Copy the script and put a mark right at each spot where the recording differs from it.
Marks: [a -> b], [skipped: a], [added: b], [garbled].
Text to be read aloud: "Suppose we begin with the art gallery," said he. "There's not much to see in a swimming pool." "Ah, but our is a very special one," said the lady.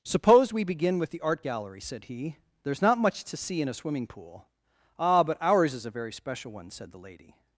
"Suppose we begin with the art gallery," said he. "There's not much to see in a swimming pool." "Ah, but [our -> ours] is a very special one," said the lady.